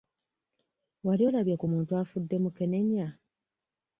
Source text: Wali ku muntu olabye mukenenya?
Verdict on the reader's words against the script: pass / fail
fail